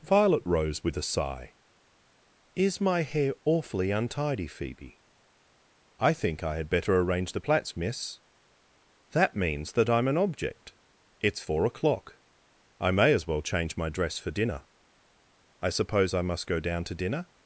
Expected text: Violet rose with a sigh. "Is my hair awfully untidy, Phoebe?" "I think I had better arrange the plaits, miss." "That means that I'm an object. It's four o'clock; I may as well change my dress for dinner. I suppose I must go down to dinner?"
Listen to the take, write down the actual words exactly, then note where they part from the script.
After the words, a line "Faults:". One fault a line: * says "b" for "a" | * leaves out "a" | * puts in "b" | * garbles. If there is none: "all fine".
Violet rose with a sigh. "Is my hair awfully untidy, Phoebe?" "I think I had better arrange the plaits, miss." "That means that I'm an object. It's four o'clock; I may as well change my dress for dinner. I suppose I must go down to dinner?"
Faults:
all fine